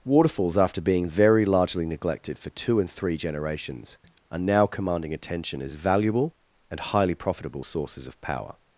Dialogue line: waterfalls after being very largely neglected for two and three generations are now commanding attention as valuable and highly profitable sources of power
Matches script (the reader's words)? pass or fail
pass